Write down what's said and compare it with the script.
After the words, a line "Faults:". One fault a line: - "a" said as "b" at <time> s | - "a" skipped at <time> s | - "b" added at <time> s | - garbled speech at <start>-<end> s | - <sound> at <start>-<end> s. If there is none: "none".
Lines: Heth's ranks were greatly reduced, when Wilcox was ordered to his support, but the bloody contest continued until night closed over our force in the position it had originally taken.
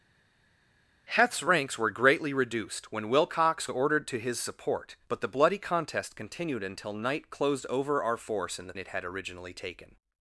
Heth's ranks were greatly reduced, when Wilcox ordered to his support, but the bloody contest continued until night closed over our force in the it had originally taken.
Faults:
- "was" skipped at 3.7 s
- "position" skipped at 8.7 s